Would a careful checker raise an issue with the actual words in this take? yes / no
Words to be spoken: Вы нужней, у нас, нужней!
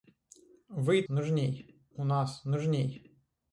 no